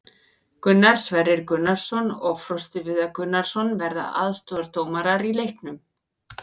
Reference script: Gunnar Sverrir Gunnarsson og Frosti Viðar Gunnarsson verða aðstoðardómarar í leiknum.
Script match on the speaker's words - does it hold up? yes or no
yes